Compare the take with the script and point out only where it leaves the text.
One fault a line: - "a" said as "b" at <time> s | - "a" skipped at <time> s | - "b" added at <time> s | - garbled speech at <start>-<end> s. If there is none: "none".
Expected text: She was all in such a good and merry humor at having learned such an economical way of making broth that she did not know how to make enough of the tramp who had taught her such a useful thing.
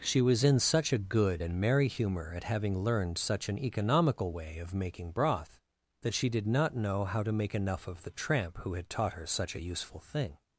- "all" skipped at 0.4 s